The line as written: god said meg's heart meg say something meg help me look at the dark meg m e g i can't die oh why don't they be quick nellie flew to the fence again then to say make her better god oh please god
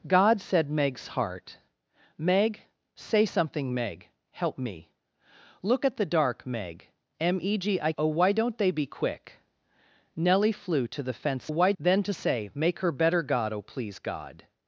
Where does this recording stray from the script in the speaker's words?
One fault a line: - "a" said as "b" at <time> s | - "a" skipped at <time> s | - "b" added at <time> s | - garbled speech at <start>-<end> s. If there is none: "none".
- "can't die" skipped at 7.9 s
- "again" said as "why" at 11.5 s